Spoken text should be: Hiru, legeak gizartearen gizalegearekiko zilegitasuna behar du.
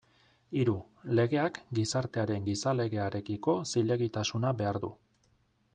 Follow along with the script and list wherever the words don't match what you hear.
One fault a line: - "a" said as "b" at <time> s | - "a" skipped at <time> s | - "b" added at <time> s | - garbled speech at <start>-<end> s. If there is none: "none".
none